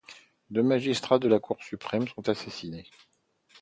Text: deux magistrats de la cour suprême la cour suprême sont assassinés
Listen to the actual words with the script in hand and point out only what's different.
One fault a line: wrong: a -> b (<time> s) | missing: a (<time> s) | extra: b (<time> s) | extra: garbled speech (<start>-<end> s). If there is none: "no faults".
missing: la cour suprême (2.1 s)